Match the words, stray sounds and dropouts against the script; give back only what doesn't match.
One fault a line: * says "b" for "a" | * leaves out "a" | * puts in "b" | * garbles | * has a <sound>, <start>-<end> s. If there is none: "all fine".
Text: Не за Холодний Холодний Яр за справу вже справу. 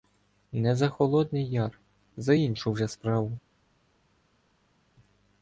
* leaves out "Холодний"
* says "іншу" for "справу"